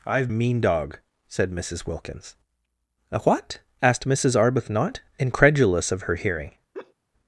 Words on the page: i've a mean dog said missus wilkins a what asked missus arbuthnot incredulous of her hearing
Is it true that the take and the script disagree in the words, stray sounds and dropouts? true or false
true